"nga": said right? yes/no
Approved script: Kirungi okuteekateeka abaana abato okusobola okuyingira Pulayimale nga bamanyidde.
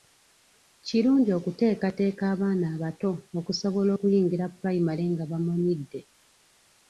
yes